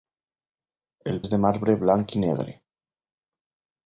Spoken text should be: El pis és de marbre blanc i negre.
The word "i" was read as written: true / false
true